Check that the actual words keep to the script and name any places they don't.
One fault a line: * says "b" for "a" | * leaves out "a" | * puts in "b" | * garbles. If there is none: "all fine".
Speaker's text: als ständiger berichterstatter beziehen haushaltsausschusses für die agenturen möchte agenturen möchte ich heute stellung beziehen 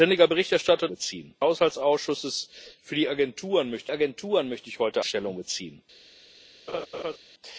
all fine